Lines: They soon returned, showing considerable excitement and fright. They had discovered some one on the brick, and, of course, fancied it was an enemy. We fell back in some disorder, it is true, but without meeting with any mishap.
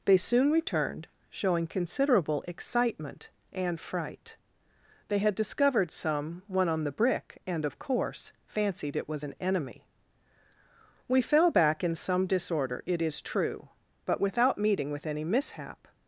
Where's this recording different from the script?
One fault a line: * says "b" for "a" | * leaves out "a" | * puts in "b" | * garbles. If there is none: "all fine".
all fine